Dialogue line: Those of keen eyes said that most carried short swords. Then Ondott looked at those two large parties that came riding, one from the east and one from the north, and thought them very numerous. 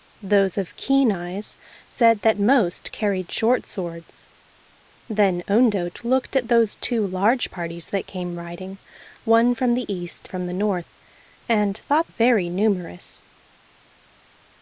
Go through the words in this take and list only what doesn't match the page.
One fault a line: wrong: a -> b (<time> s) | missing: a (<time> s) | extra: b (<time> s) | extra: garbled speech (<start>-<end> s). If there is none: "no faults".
missing: and one (10.3 s)
missing: them (12.1 s)